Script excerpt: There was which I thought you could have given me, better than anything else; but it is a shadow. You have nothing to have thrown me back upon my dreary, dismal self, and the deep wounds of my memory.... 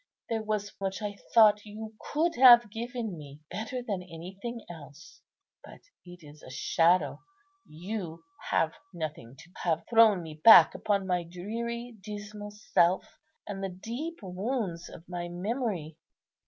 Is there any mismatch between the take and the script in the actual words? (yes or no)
no